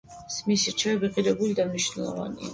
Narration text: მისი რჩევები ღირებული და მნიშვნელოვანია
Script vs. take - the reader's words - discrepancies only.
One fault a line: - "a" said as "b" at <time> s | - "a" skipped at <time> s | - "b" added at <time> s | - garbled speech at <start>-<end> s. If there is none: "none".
none